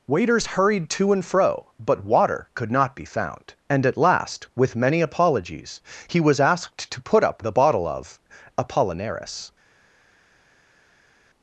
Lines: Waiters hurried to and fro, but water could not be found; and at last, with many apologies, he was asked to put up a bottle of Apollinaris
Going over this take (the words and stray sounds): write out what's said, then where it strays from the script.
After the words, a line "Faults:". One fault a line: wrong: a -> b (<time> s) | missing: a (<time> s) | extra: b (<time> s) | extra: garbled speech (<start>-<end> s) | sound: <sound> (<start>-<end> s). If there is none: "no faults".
Waiters hurried to and fro, but water could not be found; and at last, with many apologies, he was asked to put up a bottle of Apollinaris
Faults:
no faults